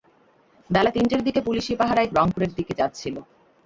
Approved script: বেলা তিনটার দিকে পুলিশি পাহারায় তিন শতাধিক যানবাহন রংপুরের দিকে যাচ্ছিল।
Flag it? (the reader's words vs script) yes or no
yes